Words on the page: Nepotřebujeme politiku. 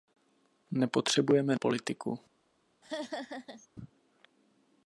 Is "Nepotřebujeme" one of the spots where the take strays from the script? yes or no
no